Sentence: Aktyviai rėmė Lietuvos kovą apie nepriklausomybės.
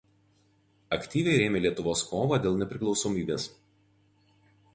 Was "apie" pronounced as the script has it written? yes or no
no